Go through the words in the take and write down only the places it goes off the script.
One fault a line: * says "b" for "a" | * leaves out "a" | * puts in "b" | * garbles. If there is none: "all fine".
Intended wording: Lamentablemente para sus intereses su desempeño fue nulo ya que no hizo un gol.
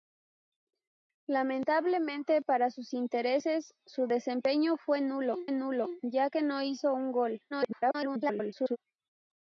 * puts in "nulo"
* garbles